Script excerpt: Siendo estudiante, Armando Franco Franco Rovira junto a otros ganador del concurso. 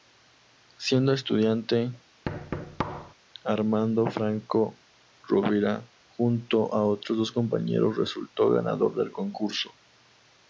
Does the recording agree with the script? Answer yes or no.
no